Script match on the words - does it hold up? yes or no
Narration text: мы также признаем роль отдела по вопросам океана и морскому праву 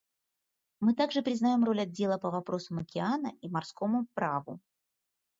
yes